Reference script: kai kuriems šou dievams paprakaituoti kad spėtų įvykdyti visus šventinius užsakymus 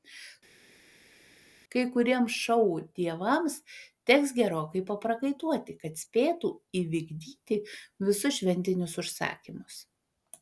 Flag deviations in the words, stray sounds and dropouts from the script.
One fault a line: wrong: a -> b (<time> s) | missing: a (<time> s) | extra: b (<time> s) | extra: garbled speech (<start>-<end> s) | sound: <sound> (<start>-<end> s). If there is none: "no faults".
extra: teks gerokai (4.1 s)